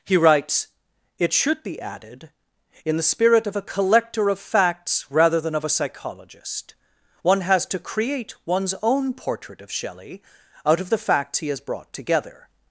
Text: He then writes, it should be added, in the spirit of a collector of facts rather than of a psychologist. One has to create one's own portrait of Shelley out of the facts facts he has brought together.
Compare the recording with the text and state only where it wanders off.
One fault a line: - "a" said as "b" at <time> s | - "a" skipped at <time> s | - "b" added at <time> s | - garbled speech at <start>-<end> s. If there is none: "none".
- "then" skipped at 0.2 s
- "facts" skipped at 11.4 s